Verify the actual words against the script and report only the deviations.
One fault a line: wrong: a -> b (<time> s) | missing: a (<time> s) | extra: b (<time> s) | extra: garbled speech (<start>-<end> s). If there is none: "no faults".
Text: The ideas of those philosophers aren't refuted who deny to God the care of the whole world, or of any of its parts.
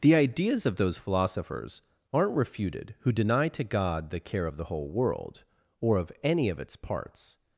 no faults